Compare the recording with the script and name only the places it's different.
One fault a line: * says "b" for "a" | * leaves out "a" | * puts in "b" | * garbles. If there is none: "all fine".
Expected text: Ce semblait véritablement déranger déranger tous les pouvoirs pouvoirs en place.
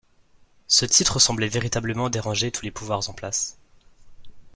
* puts in "titre"
* leaves out "déranger"
* leaves out "pouvoirs"